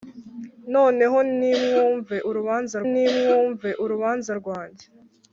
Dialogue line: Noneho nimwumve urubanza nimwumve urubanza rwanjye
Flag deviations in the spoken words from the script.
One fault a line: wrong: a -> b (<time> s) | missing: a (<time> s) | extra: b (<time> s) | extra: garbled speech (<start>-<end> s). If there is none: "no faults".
no faults